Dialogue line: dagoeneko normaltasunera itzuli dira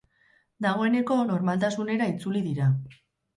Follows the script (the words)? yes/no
yes